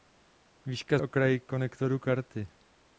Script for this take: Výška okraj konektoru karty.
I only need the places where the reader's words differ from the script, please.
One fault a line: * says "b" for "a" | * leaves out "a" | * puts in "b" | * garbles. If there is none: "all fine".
all fine